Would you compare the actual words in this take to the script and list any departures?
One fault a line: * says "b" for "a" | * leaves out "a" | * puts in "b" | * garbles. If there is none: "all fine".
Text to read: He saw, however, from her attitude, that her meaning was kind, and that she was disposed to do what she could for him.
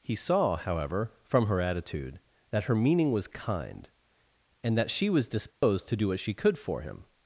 all fine